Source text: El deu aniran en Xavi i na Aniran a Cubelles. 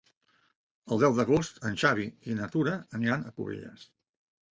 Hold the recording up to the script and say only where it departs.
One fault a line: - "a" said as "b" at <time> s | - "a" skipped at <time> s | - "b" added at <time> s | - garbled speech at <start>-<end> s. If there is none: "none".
- "aniran" said as "d'agost" at 1.2 s
- "Tura" added at 2.5 s